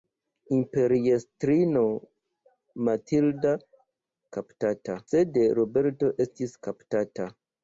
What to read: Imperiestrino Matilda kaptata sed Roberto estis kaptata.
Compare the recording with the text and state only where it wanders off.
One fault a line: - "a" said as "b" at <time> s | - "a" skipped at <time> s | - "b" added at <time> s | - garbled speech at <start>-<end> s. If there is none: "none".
none